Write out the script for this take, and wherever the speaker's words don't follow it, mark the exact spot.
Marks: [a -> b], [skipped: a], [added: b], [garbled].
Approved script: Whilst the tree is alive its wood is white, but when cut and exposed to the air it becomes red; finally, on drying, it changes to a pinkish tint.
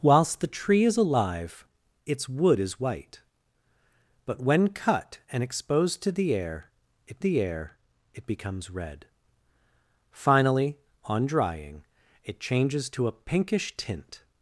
Whilst the tree is alive its wood is white, but when cut and exposed to the air it [added: the air it] becomes red; finally, on drying, it changes to a pinkish tint.